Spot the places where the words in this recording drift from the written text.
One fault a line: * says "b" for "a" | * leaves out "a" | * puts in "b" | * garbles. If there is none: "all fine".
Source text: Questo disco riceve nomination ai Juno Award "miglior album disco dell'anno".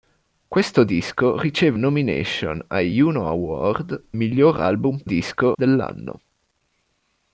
all fine